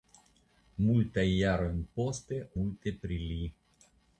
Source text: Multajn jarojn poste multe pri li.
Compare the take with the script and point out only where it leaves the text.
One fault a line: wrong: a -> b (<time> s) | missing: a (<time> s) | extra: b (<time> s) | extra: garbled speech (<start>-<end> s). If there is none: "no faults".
no faults